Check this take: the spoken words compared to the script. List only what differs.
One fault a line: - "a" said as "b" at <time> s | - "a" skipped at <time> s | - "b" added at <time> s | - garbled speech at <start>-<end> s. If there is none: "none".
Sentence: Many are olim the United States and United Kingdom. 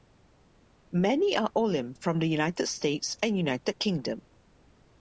- "from" added at 1.9 s